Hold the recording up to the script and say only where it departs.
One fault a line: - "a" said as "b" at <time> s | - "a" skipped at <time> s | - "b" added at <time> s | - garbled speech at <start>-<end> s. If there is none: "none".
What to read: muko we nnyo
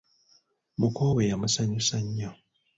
- "yamusanyusa" added at 1.3 s